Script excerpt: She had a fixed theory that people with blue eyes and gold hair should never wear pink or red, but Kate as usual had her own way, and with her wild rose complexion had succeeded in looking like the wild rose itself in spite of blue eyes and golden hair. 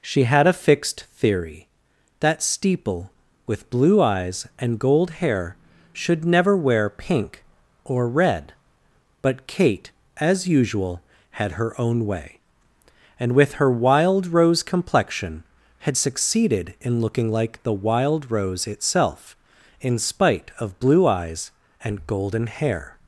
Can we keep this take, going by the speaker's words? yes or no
no